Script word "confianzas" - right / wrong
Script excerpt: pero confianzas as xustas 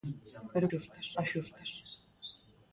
wrong